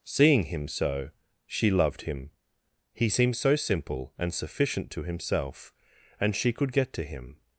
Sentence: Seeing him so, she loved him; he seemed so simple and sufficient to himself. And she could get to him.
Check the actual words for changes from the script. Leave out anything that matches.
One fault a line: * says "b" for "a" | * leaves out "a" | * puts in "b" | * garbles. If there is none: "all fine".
all fine